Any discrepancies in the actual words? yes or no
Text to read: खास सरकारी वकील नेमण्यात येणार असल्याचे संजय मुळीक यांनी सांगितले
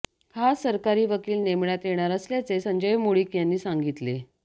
no